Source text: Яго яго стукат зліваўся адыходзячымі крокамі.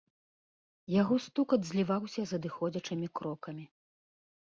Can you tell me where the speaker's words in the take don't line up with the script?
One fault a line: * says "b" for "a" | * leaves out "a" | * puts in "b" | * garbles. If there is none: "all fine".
* leaves out "яго"
* puts in "з"